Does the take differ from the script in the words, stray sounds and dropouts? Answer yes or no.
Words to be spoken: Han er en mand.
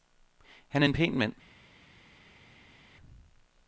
yes